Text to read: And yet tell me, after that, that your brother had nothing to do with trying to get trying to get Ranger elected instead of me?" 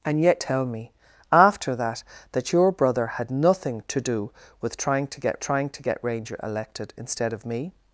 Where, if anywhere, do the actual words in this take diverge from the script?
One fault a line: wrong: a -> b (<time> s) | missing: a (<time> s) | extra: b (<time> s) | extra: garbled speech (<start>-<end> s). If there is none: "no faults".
no faults